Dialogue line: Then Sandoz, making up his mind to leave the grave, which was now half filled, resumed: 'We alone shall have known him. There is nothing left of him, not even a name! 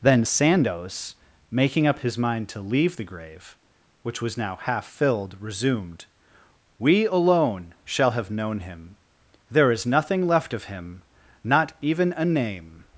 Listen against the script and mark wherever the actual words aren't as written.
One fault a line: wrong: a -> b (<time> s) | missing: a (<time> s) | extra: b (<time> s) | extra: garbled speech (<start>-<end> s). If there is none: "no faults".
no faults